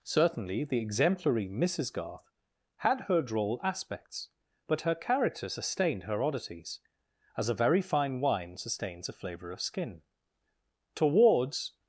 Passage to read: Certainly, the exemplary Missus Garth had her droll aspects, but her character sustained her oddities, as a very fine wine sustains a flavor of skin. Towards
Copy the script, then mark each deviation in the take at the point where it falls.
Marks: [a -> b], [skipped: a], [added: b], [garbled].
Certainly, the exemplary Missus Garth had her droll aspects, but her character sustained her oddities, as a very fine wine sustains a flavor of skin. Towards